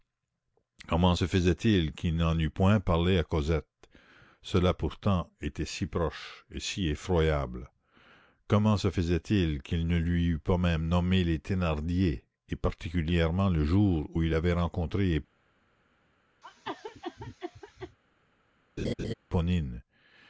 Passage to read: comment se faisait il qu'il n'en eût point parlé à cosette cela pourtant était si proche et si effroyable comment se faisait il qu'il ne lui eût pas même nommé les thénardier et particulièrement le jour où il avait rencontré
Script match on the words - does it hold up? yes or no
yes